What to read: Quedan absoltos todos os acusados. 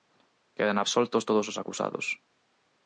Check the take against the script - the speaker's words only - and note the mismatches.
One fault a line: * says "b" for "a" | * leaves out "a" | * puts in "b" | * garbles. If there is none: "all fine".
all fine